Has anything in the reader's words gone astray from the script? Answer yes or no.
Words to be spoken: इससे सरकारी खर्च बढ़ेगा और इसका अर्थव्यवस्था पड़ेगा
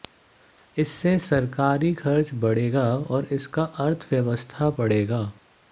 no